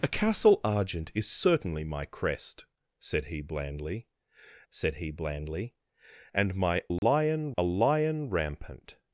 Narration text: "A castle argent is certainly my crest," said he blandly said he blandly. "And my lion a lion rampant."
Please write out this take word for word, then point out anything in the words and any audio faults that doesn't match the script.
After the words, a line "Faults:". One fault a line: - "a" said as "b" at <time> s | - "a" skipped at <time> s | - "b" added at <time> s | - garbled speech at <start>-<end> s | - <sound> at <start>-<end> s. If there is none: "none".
"A castle argent is certainly my crest," said he blandly said he blandly. "And my lion a lion rampant."
Faults:
- dropout at 7.0-7.0 s